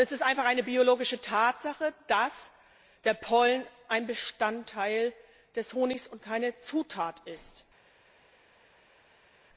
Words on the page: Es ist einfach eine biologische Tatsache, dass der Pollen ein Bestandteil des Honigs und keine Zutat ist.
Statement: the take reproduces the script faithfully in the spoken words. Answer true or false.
true